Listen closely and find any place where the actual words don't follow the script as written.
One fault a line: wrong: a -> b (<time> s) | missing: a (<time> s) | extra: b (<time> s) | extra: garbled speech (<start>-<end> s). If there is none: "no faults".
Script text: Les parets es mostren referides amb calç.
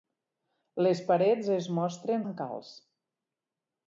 missing: referides (2.2 s)